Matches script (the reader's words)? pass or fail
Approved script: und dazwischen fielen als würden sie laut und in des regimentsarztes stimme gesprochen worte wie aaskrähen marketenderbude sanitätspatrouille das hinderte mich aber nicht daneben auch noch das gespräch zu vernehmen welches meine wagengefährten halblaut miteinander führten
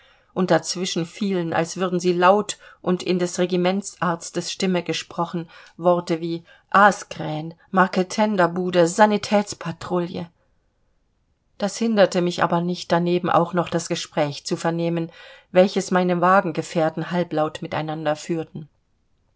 pass